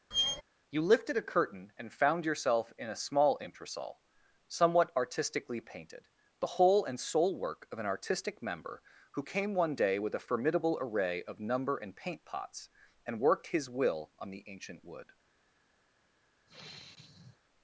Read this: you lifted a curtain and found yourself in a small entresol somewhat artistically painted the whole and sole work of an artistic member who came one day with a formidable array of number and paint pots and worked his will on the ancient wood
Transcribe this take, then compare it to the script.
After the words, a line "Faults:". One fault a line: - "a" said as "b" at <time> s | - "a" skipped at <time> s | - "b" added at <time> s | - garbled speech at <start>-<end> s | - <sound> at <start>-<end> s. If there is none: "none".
you lifted a curtain and found yourself in a small entresol somewhat artistically painted the whole and sole work of an artistic member who came one day with a formidable array of number and paint pots and worked his will on the ancient wood
Faults:
- squeak at 0.1-0.4 s
- sigh at 16.5-17.4 s